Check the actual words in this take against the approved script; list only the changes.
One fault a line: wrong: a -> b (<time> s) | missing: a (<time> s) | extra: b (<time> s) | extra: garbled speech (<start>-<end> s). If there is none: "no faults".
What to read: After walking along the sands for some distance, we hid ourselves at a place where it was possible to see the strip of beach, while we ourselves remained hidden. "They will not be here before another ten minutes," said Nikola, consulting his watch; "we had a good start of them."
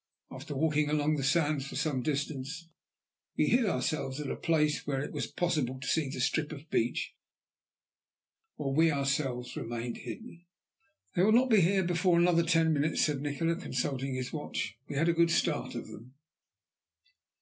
no faults